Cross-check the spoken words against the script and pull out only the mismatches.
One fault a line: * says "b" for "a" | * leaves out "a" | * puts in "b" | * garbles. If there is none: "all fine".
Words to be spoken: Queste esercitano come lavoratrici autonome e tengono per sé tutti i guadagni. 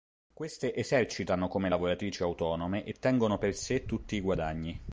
all fine